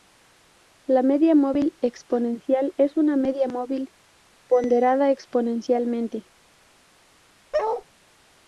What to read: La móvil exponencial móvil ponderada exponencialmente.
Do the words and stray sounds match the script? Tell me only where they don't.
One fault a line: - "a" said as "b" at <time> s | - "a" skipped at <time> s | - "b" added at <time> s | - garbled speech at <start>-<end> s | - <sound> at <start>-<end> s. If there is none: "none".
- "media" added at 1.0 s
- "es una media" added at 2.8 s
- bark at 7.5-7.8 s